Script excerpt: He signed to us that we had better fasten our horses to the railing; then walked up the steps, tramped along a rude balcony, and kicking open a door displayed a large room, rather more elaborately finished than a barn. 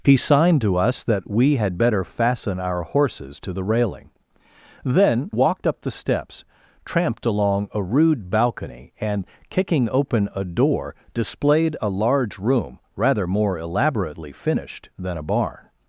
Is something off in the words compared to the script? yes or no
no